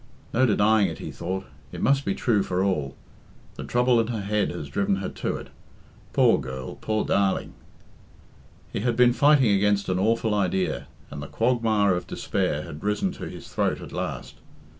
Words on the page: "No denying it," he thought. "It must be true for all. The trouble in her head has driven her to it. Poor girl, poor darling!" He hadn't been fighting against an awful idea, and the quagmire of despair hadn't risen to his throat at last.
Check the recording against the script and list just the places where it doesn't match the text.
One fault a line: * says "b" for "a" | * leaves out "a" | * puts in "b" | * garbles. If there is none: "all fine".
* says "had" for "hadn't"
* says "had" for "hadn't"